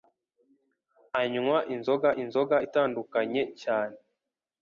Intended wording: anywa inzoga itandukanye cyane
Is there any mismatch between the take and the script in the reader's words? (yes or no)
yes